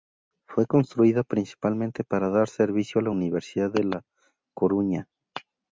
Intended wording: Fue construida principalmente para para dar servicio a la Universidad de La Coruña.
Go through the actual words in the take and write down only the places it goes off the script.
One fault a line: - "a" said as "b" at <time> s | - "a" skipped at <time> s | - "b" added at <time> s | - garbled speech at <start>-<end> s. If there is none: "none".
- "para" skipped at 2.3 s